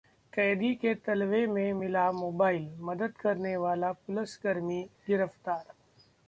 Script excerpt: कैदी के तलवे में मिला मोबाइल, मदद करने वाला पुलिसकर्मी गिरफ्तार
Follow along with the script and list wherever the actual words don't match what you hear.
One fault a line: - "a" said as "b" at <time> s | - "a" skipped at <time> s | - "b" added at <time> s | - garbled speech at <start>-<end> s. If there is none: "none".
none